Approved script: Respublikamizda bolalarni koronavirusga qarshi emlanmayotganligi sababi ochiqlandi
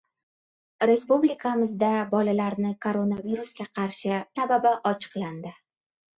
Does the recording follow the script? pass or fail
fail